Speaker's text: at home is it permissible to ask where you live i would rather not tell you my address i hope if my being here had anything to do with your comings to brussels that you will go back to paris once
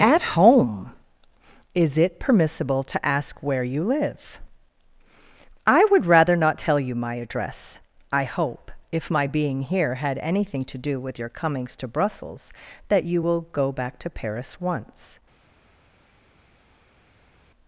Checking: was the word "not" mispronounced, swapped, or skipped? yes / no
no